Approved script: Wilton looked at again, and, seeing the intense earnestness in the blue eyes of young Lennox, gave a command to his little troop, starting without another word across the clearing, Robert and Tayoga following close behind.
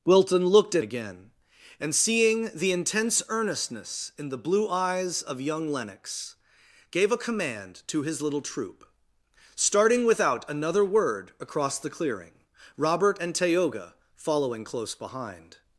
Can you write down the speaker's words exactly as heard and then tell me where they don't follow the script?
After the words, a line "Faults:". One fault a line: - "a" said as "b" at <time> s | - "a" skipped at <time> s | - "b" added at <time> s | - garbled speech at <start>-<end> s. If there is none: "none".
Wilton looked at again, and, seeing the intense earnestness in the blue eyes of young Lennox, gave a command to his little troop, starting without another word across the clearing, Robert and Tayoga following close behind.
Faults:
none